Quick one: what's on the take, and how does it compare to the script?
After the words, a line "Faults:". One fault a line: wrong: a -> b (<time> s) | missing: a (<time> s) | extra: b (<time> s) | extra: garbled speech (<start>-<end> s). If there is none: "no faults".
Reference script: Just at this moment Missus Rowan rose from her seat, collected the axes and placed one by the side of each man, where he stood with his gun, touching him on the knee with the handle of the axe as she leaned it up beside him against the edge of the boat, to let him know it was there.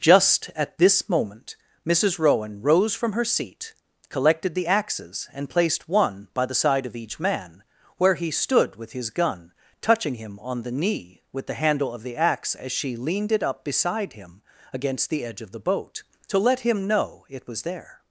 Just at this moment Missus Rowan rose from her seat, collected the axes and placed one by the side of each man, where he stood with his gun, touching him on the knee with the handle of the axe as she leaned it up beside him against the edge of the boat, to let him know it was there.
Faults:
no faults